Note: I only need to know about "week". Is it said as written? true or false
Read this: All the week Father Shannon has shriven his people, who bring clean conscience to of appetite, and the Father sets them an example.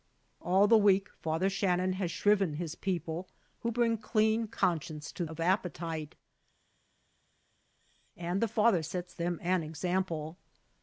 true